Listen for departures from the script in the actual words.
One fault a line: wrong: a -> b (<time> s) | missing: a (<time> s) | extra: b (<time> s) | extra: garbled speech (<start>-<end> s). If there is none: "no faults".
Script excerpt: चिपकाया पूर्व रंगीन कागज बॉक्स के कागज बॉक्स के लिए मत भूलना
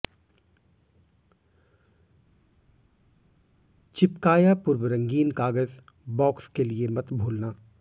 missing: कागज बॉक्स के (6.6 s)